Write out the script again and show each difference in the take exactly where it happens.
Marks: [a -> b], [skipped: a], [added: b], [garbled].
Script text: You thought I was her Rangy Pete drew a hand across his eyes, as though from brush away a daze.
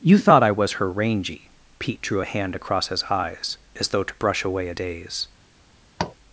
You thought I was her Rangy Pete drew a hand across his eyes, as though [from -> to] brush away a daze.